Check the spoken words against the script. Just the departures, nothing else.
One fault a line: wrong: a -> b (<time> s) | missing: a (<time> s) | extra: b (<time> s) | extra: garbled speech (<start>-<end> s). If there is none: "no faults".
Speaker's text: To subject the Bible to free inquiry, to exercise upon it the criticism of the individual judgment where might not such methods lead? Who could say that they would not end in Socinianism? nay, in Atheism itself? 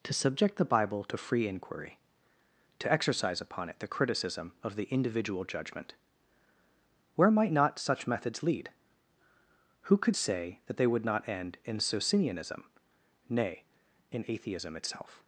no faults